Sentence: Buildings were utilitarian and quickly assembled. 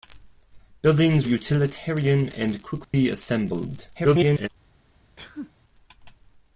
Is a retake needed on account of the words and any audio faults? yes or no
yes